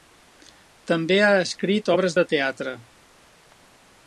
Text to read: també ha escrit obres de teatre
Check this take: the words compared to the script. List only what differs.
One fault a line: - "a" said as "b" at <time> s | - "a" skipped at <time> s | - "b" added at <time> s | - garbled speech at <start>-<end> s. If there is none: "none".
none